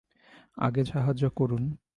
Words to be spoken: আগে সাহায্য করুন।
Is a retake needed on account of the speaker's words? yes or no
no